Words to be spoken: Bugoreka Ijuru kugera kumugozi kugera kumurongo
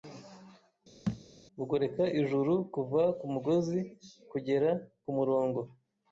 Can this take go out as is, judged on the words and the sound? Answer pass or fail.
fail